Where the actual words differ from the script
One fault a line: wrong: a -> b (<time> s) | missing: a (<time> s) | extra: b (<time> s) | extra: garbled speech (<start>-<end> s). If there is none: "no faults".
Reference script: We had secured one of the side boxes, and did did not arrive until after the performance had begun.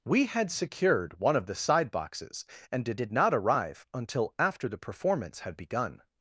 no faults